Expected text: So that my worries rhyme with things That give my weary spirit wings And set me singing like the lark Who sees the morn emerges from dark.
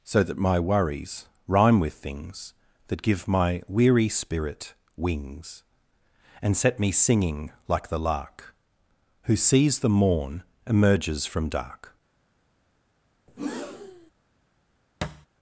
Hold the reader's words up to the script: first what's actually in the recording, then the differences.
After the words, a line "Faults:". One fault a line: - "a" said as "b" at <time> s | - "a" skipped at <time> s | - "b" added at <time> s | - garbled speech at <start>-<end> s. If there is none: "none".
So that my worries rhyme with things That give my weary spirit wings And set me singing like the lark Who sees the morn emerges from dark.
Faults:
none